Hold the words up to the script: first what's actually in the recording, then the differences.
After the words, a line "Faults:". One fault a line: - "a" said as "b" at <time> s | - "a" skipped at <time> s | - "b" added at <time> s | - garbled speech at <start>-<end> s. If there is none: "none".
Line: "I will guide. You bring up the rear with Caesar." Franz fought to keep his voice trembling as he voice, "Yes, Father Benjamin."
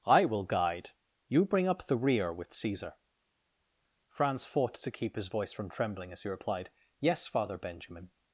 "I will guide. You bring up the rear with Caesar." Franz fought to keep his voice from trembling as he replied, "Yes, Father Benjamin."
Faults:
- "from" added at 5.5 s
- "voice" said as "replied" at 6.3 s